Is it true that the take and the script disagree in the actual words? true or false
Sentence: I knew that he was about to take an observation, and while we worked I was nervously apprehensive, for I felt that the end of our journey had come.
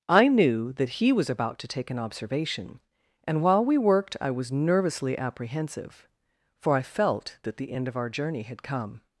false